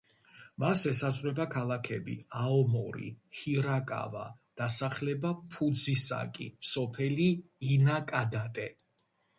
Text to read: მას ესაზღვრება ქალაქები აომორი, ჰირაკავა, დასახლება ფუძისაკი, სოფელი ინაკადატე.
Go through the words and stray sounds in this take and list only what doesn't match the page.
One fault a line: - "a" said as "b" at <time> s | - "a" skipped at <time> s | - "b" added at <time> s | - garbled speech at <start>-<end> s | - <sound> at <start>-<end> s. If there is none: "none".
none